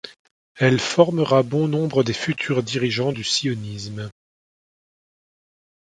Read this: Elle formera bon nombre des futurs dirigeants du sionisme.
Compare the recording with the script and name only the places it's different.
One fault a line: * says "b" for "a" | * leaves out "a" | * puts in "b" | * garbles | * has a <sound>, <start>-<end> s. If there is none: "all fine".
all fine